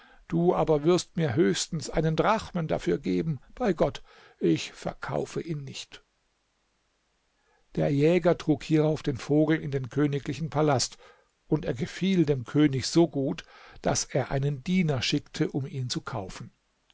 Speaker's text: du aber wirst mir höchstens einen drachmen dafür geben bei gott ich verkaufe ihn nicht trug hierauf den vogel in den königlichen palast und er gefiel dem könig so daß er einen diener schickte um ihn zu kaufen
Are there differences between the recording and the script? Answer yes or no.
yes